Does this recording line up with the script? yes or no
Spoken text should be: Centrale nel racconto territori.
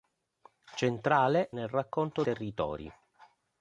yes